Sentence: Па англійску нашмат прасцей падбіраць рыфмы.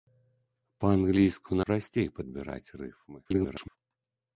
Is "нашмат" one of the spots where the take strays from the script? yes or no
yes